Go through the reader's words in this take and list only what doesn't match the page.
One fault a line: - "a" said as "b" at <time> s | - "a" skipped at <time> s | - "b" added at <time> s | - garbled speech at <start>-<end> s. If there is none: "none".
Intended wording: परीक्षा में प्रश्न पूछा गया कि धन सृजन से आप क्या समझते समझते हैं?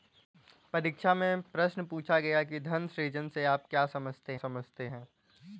none